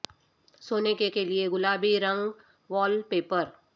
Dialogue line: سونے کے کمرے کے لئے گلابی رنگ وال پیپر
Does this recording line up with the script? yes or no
no